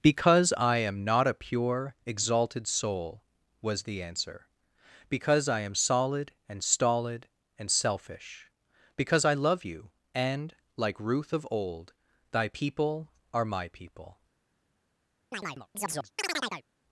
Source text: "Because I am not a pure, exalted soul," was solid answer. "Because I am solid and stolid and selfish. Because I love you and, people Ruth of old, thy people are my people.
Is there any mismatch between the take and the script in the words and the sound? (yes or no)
yes